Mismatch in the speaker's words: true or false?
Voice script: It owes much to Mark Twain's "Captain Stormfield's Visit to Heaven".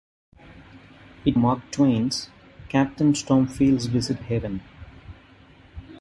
true